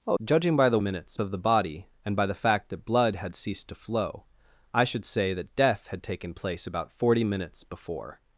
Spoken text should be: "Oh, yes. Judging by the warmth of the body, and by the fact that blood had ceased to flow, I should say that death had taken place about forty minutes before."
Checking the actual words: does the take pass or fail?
fail